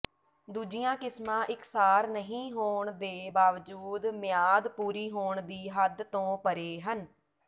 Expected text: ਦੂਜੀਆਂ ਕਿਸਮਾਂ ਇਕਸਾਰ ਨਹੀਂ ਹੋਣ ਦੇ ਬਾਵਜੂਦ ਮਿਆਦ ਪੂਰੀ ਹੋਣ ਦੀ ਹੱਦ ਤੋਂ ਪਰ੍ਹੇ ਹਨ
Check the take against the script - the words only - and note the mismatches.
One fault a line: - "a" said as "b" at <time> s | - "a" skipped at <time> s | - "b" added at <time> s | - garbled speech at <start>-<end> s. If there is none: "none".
none